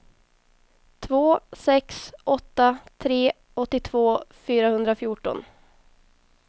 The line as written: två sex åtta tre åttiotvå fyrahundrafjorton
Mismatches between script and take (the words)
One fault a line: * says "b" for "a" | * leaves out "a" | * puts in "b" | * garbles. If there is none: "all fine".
all fine